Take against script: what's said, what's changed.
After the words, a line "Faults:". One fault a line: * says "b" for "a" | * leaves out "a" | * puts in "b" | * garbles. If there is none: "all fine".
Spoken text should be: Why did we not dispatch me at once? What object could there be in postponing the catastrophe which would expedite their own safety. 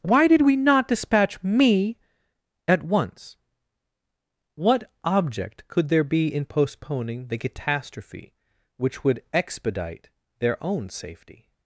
Why did we not dispatch me at once? What object could there be in postponing the catastrophe which would expedite their own safety.
Faults:
all fine